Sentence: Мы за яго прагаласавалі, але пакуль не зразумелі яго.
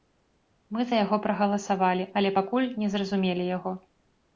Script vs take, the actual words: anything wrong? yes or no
no